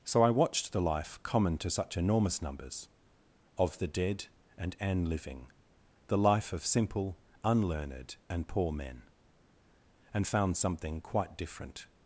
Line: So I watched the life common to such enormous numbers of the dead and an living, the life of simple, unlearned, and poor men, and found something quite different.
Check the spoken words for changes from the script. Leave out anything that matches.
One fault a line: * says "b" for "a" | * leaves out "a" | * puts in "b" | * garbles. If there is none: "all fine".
all fine